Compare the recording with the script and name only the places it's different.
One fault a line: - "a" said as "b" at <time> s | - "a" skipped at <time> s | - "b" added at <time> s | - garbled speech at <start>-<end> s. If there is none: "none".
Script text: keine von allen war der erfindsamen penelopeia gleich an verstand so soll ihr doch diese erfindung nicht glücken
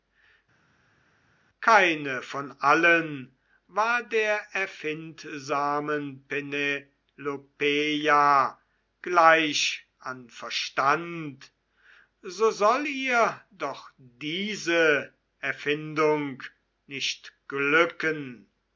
none